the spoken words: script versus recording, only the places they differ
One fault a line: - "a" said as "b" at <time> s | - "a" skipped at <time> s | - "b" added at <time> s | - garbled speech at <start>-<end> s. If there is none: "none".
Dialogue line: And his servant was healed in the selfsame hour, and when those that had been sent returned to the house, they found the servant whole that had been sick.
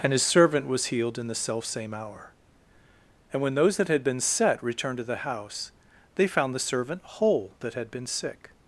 - "sent" said as "set" at 4.2 s